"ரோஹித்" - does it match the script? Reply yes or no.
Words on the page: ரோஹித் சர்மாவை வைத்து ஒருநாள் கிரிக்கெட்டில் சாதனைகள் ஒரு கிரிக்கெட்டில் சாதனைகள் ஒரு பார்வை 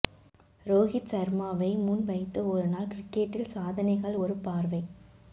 yes